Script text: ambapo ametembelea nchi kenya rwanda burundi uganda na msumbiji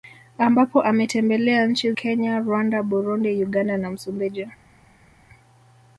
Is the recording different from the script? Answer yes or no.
no